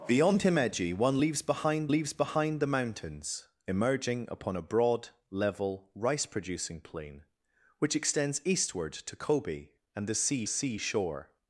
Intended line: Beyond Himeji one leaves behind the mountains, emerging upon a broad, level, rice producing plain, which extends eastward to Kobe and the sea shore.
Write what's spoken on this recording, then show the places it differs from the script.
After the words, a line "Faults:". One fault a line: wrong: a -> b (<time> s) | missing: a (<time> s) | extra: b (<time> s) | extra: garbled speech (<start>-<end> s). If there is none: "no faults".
Beyond Himeji one leaves behind leaves behind the mountains, emerging upon a broad, level, rice producing plain, which extends eastward to Kobe and the sea sea shore.
Faults:
extra: leaves behind (1.9 s)
extra: sea (10.5 s)